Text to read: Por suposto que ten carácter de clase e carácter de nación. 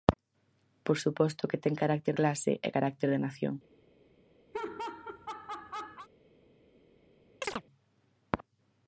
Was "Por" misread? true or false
false